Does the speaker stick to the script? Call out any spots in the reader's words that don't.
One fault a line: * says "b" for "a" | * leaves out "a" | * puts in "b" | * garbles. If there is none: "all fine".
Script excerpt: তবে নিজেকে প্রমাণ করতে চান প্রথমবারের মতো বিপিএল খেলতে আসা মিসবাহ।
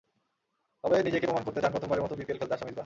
all fine